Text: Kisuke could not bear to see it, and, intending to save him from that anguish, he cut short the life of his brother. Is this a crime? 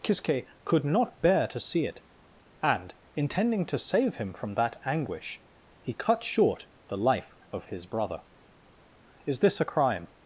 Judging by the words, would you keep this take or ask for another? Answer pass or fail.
pass